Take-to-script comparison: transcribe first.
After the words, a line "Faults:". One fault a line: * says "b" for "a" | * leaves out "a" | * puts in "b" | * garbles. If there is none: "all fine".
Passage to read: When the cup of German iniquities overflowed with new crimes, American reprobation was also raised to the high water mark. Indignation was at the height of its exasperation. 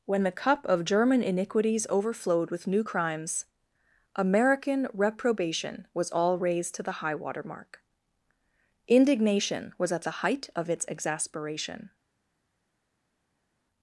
When the cup of German iniquities overflowed with new crimes, American reprobation was all raised to the high water mark. Indignation was at the height of its exasperation.
Faults:
* says "all" for "also"